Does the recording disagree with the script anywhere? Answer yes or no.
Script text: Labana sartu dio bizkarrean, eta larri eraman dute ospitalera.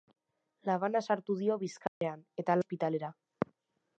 yes